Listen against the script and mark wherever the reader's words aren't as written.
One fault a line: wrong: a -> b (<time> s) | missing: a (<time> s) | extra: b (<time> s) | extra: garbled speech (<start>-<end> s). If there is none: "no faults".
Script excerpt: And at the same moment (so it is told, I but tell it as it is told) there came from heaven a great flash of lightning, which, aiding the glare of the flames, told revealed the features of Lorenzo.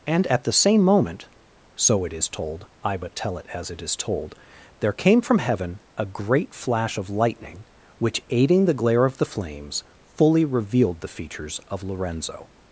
wrong: told -> fully (10.2 s)